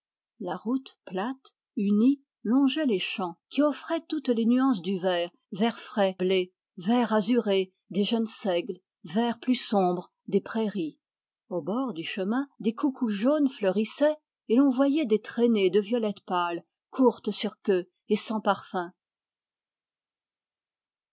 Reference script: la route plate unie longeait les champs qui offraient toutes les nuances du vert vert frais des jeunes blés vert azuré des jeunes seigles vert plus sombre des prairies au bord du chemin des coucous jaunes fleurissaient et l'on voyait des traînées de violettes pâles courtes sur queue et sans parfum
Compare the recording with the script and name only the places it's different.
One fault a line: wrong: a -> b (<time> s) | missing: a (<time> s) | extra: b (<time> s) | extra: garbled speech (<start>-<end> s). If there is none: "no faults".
missing: des jeunes (6.2 s)